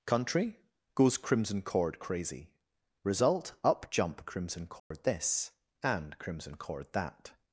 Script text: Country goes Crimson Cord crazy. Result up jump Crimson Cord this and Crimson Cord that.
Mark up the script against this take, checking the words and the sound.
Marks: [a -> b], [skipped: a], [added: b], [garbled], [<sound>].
Country goes Crimson Cord crazy. Result up jump Crimson Cord [dropout] this and Crimson Cord that.